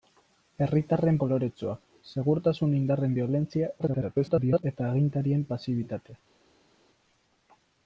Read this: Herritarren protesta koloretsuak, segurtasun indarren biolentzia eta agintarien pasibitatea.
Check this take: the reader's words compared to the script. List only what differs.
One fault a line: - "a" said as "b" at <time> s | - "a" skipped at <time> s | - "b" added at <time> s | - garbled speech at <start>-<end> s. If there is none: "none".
- "protesta" skipped at 1.2 s
- garbled speech at 3.8-4.6 s